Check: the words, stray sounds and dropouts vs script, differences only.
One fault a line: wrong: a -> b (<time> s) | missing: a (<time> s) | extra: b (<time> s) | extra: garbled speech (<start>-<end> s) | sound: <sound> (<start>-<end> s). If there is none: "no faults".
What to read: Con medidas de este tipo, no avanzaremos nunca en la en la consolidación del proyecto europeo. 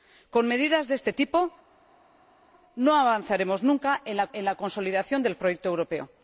no faults